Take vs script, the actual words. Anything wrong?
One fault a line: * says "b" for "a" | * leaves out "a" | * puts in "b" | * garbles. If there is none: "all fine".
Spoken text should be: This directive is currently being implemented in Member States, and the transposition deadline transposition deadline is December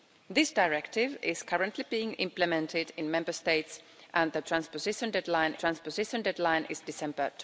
all fine